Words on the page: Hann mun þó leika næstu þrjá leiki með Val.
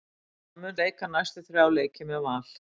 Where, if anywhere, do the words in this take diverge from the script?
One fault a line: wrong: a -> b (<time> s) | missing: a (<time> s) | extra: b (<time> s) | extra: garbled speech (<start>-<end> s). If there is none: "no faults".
missing: þó (0.8 s)